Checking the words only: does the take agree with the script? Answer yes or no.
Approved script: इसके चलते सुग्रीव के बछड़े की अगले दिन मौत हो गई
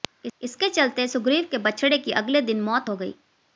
yes